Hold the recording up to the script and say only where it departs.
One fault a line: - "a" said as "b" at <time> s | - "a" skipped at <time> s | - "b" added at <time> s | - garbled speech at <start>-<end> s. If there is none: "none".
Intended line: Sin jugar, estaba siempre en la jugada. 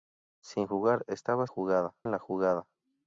- "siempre" said as "jugada" at 1.5 s